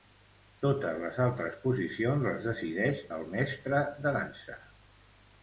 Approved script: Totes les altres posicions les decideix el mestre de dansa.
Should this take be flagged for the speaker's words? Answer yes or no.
no